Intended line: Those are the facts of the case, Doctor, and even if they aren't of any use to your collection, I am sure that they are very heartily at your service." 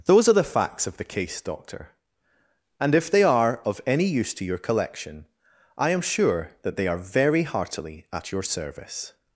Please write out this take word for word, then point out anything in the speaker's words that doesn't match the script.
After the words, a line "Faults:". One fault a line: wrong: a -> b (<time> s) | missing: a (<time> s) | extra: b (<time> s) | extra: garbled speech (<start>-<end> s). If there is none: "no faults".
Those are the facts of the case, Doctor, and if they are of any use to your collection, I am sure that they are very heartily at your service."
Faults:
missing: even (3.0 s)
wrong: aren't -> are (3.2 s)